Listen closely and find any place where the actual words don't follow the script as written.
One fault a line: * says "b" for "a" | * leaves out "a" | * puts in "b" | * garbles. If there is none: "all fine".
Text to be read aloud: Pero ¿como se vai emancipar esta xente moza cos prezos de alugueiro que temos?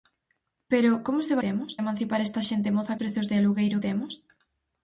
* says "temos" for "vai"
* leaves out "cos"
* leaves out "que"